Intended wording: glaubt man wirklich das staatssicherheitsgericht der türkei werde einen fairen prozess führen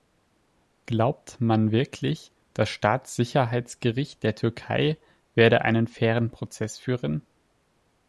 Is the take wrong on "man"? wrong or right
right